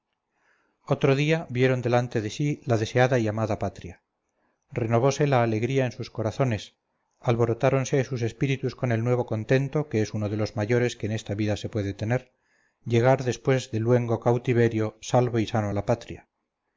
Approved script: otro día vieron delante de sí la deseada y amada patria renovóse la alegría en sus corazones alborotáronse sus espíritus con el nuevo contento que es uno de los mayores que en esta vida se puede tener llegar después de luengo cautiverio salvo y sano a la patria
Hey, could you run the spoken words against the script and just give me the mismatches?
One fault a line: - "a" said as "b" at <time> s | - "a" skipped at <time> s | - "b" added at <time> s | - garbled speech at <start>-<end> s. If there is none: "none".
none